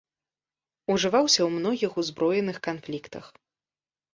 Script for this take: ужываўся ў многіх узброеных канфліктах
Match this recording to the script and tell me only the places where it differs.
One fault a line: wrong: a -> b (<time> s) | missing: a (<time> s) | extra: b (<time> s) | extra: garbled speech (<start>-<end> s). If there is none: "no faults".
no faults